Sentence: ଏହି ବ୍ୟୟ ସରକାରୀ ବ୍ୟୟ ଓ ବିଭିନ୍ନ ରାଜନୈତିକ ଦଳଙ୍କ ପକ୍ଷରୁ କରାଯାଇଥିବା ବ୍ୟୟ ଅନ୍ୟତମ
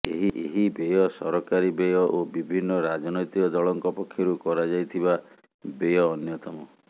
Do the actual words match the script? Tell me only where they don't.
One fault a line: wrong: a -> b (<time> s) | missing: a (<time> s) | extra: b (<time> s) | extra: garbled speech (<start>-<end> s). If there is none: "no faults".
no faults